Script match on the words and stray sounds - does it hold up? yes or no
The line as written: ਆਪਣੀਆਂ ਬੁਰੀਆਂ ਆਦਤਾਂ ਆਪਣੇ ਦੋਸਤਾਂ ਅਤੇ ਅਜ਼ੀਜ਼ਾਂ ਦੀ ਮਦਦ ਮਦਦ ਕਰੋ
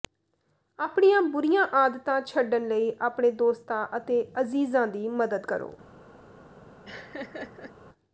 no